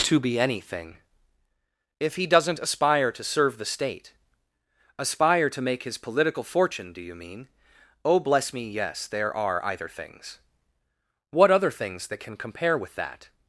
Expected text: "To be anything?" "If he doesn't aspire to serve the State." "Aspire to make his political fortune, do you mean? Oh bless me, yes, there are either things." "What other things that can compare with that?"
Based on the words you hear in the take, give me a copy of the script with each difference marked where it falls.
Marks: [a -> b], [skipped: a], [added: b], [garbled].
"To be anything?" "If he doesn't aspire to serve the State." "Aspire to make his political fortune, do you mean? Oh bless me, yes, there are either things." "What other things that can compare with that?"